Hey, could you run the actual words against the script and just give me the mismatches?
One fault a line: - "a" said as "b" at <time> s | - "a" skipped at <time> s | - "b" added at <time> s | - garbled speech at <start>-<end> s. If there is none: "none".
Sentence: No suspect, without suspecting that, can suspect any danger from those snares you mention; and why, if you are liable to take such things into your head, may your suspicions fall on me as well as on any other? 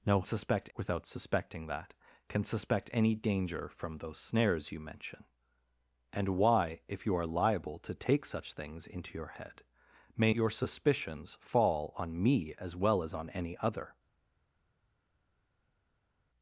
none